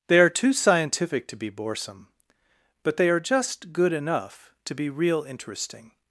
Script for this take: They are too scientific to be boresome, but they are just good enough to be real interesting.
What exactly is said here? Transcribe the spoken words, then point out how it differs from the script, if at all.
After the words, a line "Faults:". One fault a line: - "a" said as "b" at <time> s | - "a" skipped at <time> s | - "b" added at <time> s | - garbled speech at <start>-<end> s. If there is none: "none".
They are too scientific to be boresome, but they are just good enough to be real interesting.
Faults:
none